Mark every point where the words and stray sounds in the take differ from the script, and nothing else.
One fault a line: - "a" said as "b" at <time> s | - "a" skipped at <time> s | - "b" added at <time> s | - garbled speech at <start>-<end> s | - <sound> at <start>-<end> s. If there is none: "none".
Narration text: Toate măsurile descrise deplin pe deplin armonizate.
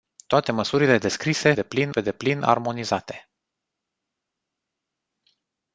none